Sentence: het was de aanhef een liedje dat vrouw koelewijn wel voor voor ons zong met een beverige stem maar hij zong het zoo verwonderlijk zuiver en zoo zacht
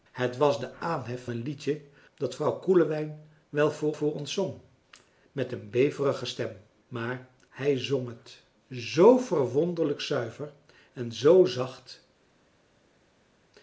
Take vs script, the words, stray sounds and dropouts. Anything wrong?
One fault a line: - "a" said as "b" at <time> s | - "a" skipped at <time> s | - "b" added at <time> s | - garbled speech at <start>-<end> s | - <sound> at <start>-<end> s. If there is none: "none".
none